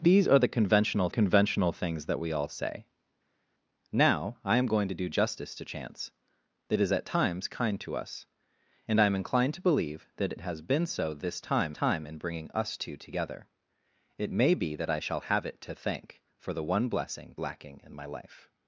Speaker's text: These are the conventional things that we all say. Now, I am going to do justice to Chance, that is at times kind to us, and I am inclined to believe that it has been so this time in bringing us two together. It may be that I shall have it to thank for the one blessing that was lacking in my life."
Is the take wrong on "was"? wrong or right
wrong